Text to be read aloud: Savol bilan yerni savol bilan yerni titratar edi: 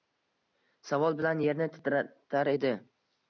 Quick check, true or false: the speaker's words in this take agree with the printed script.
false